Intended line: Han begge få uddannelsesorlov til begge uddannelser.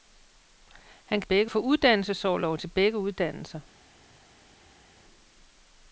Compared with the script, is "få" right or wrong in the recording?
right